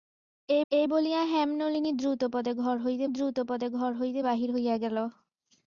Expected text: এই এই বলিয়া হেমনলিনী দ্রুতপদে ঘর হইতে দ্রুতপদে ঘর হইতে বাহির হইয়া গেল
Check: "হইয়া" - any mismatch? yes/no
no